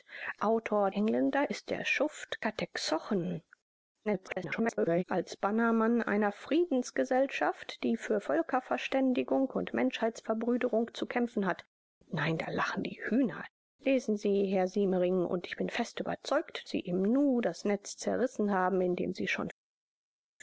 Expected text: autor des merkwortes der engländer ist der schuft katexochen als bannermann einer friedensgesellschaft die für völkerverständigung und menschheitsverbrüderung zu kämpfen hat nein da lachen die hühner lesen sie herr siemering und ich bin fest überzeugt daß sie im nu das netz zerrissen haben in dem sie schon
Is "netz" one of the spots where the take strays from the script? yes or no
no